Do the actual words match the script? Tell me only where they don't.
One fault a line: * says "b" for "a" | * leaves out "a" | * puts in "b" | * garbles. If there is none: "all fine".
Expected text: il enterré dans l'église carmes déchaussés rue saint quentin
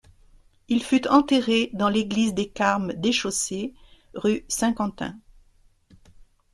* puts in "fut"
* puts in "des"